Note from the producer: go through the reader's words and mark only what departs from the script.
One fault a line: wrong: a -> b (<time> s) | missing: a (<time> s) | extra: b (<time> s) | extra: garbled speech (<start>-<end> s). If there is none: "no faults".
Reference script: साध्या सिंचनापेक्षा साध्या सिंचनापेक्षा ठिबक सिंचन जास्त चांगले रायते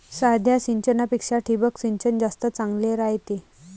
missing: साध्या सिंचनापेक्षा (1.4 s)